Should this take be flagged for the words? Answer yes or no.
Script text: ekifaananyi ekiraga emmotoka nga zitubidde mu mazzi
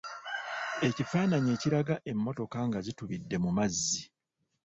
no